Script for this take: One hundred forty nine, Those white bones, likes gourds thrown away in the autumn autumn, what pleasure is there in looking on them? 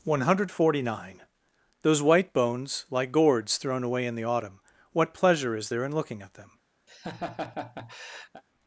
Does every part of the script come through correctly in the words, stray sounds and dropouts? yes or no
no